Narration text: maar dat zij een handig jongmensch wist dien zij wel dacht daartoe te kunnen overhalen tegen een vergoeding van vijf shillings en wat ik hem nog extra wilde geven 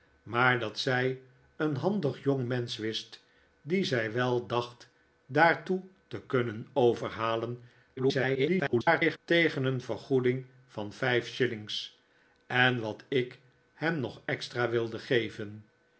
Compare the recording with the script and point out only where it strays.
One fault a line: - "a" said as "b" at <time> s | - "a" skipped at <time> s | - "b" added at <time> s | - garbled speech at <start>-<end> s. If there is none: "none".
- garbled speech at 8.0-9.2 s